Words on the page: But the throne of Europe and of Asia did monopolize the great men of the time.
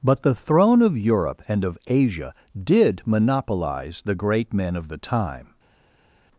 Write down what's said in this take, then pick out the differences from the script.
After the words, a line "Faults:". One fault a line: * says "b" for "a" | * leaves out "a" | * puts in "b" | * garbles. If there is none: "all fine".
But the throne of Europe and of Asia did monopolize the great men of the time.
Faults:
all fine